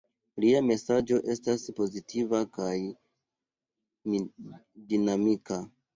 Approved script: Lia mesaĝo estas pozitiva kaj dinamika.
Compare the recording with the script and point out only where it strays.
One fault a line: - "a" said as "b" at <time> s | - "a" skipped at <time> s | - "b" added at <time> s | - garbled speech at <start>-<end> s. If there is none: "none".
none